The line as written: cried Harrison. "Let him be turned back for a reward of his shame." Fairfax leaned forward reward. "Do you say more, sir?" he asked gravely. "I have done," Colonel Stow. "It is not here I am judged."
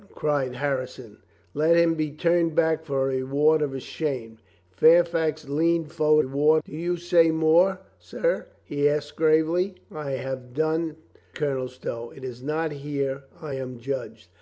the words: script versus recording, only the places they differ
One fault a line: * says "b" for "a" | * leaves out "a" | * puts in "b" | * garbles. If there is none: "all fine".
all fine